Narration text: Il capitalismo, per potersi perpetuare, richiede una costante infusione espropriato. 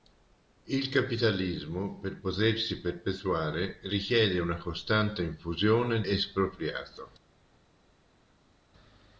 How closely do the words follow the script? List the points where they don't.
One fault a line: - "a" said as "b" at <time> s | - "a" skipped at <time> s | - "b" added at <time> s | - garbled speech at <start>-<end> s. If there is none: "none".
none